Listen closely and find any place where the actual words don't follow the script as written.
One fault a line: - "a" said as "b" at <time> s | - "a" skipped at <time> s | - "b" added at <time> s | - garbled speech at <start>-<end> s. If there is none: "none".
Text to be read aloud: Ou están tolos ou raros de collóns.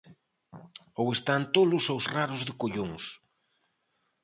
none